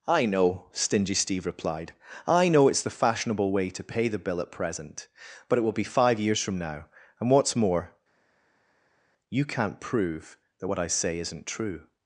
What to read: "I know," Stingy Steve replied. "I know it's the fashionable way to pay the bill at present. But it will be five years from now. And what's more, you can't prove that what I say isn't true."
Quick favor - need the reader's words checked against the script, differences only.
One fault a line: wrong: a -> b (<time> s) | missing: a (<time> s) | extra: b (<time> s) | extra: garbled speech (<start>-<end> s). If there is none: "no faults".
no faults